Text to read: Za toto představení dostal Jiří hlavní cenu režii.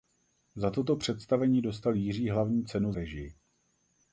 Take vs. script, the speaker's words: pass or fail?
pass